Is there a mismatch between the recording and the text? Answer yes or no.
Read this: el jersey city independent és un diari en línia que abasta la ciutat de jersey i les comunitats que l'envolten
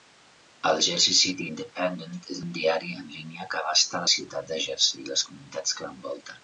no